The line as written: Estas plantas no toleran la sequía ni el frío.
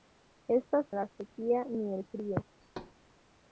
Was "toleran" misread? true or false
true